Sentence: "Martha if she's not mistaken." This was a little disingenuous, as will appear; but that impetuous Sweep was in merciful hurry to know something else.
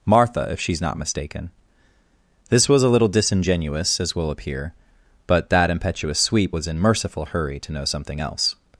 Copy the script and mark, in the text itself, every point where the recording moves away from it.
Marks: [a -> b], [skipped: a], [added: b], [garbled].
"Martha if she's not mistaken." This was a little disingenuous, as will appear; but that impetuous Sweep was in merciful hurry to know something else.